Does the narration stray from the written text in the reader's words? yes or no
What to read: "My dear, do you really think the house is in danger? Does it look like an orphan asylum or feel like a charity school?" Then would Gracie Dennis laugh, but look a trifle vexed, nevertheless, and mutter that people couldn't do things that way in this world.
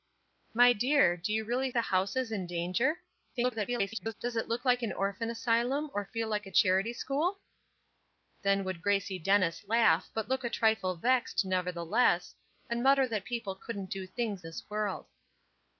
yes